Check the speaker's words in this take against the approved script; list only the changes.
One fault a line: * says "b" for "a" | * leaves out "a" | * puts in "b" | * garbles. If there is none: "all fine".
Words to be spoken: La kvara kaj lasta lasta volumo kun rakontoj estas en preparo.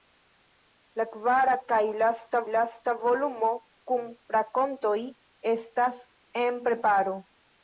all fine